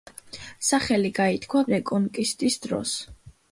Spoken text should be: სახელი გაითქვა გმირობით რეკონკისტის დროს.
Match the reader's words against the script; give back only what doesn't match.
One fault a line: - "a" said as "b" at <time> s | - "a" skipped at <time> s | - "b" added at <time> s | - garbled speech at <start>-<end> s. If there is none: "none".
- "გმირობით" skipped at 1.6 s